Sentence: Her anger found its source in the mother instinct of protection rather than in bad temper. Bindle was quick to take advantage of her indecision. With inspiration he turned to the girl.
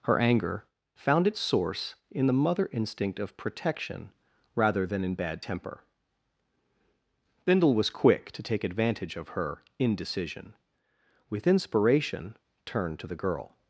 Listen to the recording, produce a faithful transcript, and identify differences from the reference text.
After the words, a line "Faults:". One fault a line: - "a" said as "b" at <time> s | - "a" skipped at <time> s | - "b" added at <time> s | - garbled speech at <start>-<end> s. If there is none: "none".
Her anger found its source in the mother instinct of protection rather than in bad temper. Bindle was quick to take advantage of her indecision. With inspiration turned to the girl.
Faults:
- "he" skipped at 12.4 s